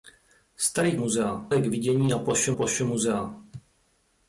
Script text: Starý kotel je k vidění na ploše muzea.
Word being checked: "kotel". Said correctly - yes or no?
no